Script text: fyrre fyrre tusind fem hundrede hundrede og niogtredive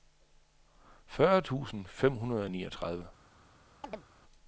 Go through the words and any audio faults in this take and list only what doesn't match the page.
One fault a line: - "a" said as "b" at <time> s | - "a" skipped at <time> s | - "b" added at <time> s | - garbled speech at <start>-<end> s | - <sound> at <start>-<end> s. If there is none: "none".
- "fyrre" skipped at 1.4 s
- "hundrede" skipped at 2.4 s
- chirp at 3.8-4.1 s